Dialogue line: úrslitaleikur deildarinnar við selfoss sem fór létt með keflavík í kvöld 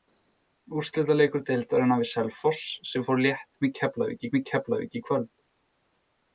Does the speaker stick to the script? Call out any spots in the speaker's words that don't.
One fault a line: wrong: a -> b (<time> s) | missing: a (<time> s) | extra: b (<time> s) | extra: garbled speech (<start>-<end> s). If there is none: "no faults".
extra: með keflavík (4.4 s)